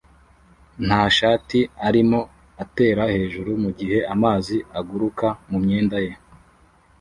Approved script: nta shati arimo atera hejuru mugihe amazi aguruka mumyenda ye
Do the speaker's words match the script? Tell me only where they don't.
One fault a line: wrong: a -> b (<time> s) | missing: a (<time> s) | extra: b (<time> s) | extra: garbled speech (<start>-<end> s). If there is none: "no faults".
no faults